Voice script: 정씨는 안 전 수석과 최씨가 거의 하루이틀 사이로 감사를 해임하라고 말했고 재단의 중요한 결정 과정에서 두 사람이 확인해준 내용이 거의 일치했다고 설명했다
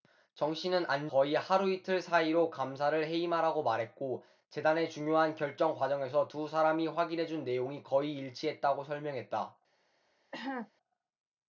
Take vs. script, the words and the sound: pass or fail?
fail